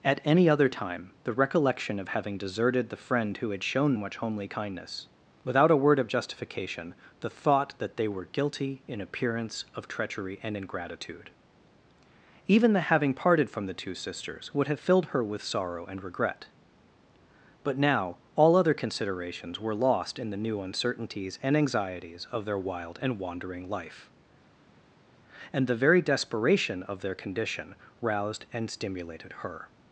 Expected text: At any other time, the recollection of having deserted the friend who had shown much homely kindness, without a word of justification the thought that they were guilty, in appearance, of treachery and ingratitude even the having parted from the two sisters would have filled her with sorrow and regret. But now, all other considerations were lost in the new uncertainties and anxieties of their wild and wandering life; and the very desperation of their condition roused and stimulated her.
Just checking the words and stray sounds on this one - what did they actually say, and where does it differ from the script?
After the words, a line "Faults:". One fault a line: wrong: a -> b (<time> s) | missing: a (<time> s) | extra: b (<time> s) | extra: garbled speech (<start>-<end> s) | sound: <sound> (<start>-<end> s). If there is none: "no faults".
At any other time, the recollection of having deserted the friend who had shown much homely kindness, without a word of justification the thought that they were guilty, in appearance, of treachery and ingratitude even the having parted from the two sisters would have filled her with sorrow and regret. But now, all other considerations were lost in the new uncertainties and anxieties of their wild and wandering life; and the very desperation of their condition roused and stimulated her.
Faults:
no faults